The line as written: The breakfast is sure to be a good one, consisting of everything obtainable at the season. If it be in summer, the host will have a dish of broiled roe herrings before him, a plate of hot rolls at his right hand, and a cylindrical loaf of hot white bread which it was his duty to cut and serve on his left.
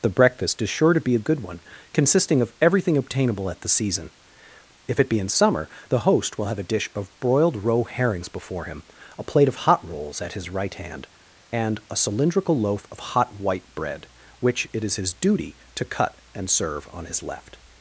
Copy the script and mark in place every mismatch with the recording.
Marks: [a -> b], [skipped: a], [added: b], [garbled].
The breakfast is sure to be a good one, consisting of everything obtainable at the season. If it be in summer, the host will have a dish of broiled roe herrings before him, a plate of hot rolls at his right hand, and a cylindrical loaf of hot white bread which it [was -> is] his duty to cut and serve on his left.